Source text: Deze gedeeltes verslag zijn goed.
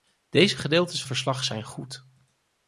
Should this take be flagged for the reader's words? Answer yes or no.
no